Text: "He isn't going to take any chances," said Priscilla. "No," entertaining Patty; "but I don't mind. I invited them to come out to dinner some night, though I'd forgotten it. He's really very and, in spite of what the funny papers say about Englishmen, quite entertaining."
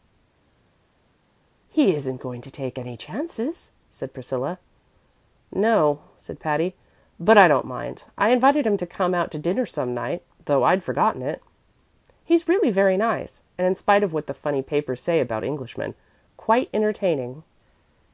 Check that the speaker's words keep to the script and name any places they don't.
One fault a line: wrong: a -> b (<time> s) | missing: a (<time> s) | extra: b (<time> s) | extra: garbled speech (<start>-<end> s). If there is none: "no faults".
wrong: entertaining -> said (6.2 s)
wrong: them -> him (8.7 s)
extra: nice (13.0 s)